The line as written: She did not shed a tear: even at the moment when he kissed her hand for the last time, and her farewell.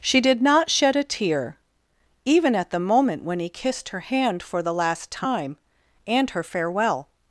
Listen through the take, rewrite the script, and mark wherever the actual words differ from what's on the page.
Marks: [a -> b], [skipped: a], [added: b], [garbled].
She did not shed a tear: even at the moment when he kissed her hand for the last time, and her farewell.